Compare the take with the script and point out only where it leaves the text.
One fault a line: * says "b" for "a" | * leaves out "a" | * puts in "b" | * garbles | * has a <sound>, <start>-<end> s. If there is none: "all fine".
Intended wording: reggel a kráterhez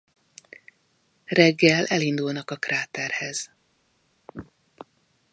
* puts in "elindulnak"